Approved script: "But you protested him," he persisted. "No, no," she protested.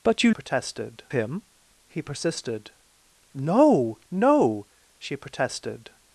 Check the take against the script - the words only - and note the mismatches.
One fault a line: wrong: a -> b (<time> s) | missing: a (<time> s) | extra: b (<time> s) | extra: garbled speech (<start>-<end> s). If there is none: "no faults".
no faults